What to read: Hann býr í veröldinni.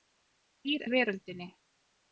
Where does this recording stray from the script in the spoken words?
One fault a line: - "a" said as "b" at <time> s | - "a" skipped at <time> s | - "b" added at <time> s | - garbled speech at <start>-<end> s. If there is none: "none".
none